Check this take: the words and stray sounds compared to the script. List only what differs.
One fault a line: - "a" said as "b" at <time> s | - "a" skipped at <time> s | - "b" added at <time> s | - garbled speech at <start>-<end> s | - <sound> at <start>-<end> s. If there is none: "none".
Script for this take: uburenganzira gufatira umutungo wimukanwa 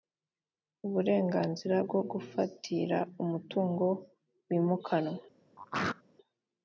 - "bwo" added at 1.8 s
- throat clearing at 5.6-6.0 s